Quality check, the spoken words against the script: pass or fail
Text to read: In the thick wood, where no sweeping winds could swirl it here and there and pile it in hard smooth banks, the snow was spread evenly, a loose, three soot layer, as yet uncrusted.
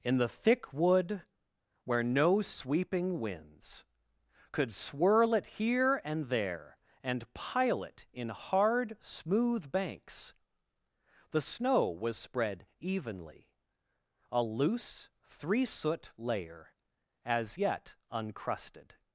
pass